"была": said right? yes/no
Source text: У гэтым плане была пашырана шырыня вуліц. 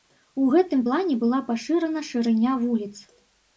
yes